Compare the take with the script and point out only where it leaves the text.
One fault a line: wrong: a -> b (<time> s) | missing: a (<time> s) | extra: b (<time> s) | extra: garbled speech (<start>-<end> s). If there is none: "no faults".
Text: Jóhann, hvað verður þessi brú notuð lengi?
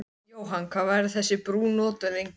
no faults